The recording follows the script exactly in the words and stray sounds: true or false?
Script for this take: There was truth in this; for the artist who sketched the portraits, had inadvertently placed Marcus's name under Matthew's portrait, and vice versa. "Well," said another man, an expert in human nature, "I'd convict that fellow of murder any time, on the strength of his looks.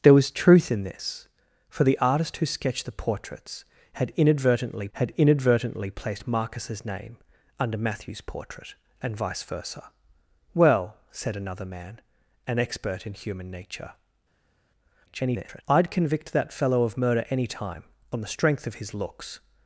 false